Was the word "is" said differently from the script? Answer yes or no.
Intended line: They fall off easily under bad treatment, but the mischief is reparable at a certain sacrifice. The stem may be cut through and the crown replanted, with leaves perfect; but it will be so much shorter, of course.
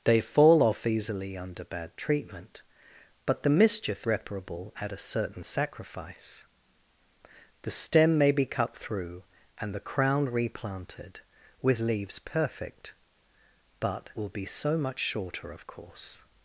yes